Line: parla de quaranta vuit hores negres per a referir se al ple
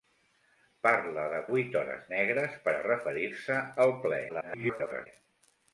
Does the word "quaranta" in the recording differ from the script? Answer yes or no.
yes